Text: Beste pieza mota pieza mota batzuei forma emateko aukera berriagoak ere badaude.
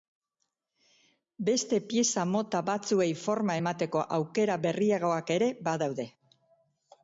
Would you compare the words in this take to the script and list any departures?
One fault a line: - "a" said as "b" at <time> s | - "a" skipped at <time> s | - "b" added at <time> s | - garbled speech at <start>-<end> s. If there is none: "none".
- "pieza mota" skipped at 2.6 s